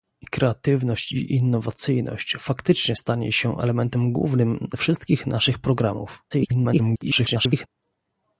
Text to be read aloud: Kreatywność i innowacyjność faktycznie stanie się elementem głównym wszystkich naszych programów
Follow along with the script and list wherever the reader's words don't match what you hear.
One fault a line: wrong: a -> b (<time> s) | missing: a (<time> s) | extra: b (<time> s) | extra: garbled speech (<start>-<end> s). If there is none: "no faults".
extra: garbled speech (6.3-7.7 s)